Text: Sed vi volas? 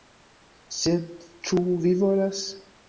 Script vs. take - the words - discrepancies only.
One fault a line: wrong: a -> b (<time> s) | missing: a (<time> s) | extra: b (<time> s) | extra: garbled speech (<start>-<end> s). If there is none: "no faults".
extra: ĉu (1.5 s)